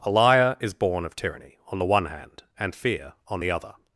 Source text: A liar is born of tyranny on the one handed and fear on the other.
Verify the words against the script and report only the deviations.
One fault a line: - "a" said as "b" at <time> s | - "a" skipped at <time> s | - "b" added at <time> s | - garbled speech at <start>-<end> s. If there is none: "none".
- "handed" said as "hand" at 2.1 s